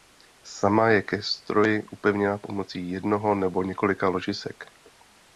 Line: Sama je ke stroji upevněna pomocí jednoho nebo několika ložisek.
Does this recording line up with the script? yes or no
yes